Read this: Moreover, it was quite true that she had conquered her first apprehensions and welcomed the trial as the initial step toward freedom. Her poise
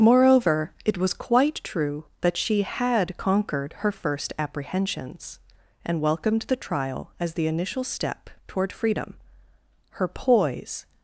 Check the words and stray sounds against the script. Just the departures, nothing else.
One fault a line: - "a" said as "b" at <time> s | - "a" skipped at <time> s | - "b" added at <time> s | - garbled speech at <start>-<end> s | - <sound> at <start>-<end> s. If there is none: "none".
none